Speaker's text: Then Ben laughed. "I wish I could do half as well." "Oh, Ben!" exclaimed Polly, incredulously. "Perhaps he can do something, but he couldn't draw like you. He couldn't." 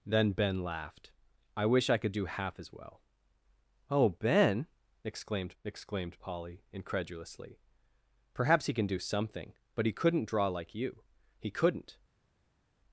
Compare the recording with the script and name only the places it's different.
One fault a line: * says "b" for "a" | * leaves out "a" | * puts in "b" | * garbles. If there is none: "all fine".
* puts in "exclaimed"